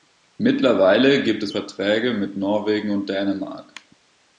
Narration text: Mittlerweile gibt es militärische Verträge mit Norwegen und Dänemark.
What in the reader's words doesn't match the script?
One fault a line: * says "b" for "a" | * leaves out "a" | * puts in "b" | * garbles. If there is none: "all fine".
* leaves out "militärische"